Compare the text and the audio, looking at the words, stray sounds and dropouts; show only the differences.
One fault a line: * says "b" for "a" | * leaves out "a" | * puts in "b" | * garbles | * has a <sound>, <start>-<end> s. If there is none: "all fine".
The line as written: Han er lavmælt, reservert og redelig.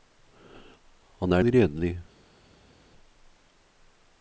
* leaves out "lavmælt reservert og"